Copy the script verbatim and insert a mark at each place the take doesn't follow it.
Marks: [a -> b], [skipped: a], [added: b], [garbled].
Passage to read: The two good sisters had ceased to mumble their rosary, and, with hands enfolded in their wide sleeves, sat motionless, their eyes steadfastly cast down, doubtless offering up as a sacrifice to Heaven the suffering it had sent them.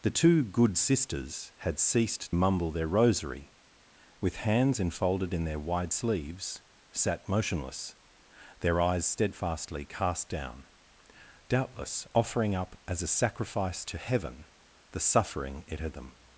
The two good sisters had ceased [skipped: to] mumble their rosary, [skipped: and,] with hands enfolded in their wide sleeves, sat motionless, their eyes steadfastly cast down, doubtless offering up as a sacrifice to Heaven the suffering it had [skipped: sent] them.